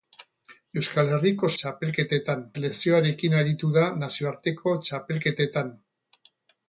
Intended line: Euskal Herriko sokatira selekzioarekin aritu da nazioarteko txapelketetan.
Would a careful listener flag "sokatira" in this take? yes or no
yes